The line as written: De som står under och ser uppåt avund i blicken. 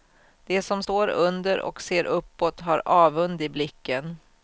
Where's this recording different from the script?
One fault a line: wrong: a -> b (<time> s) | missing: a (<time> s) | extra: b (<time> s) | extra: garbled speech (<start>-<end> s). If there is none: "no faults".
extra: har (2.6 s)